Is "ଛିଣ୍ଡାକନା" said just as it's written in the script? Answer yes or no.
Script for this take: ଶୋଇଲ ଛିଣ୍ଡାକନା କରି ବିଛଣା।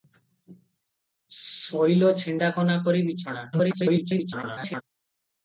yes